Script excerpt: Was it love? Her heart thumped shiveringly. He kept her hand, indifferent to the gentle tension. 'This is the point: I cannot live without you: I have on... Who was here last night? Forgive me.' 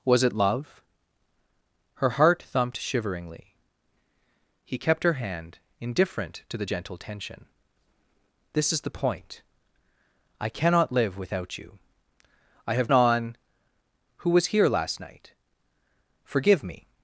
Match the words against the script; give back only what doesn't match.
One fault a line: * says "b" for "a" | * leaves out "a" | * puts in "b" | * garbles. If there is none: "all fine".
all fine